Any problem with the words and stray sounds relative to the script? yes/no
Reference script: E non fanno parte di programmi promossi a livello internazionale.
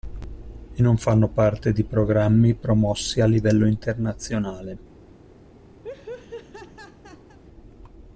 yes